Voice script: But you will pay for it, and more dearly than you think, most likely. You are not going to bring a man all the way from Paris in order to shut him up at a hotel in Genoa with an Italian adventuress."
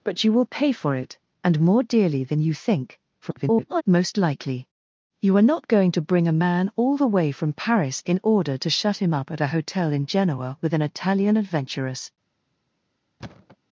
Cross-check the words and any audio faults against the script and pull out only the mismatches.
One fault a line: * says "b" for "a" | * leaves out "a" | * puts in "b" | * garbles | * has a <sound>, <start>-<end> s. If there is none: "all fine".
* garbles
* has a thud, 13.2-13.6 s